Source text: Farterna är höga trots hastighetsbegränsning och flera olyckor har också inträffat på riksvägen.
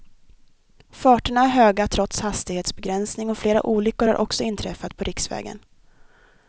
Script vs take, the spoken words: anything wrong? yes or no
no